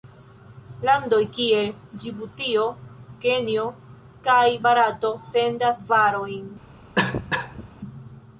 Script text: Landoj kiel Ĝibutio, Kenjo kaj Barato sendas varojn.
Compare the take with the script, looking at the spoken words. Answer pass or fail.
pass